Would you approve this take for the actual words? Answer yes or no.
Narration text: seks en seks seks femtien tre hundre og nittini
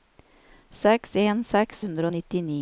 no